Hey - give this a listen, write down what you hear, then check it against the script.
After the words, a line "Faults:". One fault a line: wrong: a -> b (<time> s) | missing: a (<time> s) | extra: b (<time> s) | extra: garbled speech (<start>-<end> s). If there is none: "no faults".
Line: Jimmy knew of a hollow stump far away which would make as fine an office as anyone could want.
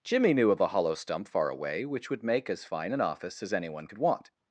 Jimmy knew of a hollow stump far away which would make as fine an office as anyone could want.
Faults:
no faults